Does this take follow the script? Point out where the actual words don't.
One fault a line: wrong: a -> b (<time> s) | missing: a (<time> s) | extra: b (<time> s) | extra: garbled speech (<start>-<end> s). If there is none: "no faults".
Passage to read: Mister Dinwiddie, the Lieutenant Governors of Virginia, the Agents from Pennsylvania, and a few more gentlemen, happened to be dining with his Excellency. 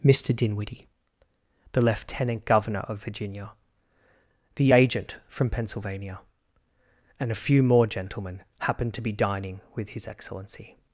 wrong: Governors -> Governor (2.5 s)
wrong: Agents -> Agent (4.7 s)